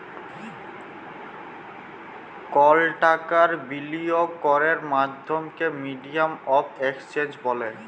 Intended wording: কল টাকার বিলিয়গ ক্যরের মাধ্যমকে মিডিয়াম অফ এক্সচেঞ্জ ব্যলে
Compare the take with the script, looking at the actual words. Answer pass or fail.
pass